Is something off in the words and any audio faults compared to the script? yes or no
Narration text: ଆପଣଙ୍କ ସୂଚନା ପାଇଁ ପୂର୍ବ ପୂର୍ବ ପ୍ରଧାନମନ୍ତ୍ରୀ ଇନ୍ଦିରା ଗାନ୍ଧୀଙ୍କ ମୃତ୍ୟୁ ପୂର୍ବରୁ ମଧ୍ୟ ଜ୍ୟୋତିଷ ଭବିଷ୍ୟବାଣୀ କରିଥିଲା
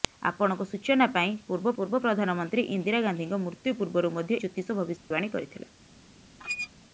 yes